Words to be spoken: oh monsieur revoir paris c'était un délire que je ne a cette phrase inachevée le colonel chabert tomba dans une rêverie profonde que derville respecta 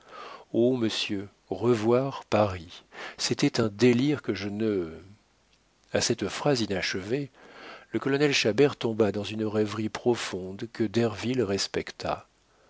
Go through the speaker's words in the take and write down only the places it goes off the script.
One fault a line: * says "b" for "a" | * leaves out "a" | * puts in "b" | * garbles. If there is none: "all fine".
all fine